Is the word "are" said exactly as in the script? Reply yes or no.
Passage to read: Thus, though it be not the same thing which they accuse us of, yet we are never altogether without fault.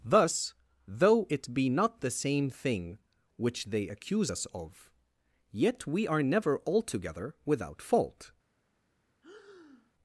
yes